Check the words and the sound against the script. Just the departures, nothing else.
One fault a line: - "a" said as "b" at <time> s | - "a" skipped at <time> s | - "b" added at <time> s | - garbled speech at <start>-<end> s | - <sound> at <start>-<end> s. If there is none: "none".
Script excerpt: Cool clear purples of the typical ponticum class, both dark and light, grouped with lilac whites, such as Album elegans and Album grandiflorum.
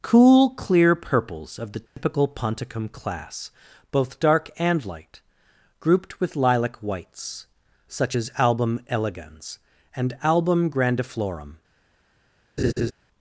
- dropout at 1.9-2.0 s
- laugh at 12.6-12.9 s